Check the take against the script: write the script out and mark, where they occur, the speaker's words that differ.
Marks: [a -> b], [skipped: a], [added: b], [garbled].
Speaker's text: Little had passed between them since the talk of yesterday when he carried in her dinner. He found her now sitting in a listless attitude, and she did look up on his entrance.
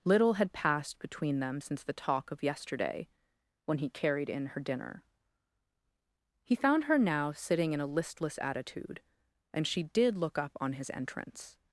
Little had passed between them since the talk of yesterday when he carried in her dinner. He found her now sitting in a listless attitude, and she did look up on his entrance.